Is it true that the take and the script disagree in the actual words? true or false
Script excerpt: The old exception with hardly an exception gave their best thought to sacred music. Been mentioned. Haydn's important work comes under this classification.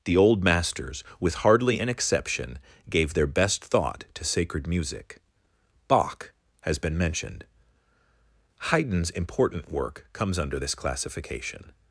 true